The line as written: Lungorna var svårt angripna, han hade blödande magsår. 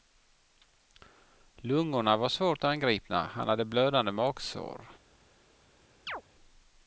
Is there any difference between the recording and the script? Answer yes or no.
no